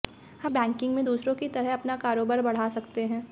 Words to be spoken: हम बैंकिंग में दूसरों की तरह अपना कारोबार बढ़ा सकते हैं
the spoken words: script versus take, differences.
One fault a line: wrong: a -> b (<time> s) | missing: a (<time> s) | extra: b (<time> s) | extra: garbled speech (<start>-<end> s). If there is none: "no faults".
no faults